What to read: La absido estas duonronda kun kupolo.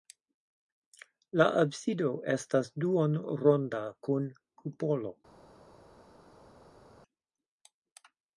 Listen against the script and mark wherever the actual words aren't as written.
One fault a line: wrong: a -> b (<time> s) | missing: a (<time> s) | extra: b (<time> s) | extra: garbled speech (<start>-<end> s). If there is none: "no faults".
no faults